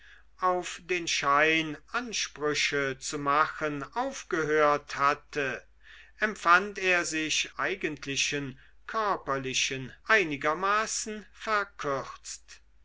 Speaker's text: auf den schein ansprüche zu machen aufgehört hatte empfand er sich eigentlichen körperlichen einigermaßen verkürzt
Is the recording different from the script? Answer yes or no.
no